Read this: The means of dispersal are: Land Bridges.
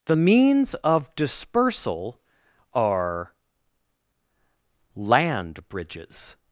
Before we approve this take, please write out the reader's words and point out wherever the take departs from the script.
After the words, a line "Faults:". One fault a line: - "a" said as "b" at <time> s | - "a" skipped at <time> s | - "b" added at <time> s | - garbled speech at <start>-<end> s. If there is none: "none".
The means of dispersal are: Land Bridges.
Faults:
none